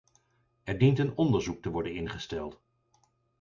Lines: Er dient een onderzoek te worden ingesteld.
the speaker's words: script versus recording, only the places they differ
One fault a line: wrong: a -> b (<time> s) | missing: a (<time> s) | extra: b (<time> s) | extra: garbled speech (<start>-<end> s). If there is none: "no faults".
no faults